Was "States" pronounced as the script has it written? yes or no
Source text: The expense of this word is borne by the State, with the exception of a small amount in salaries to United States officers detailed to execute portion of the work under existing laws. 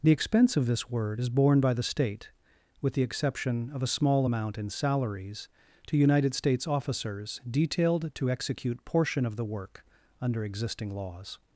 yes